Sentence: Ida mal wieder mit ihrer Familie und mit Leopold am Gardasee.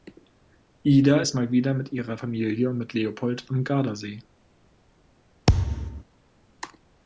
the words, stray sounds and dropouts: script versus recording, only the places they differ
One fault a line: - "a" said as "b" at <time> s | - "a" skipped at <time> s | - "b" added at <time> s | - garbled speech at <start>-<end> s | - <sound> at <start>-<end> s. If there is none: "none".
- "ist" added at 1.2 s
- thud at 5.5-6.0 s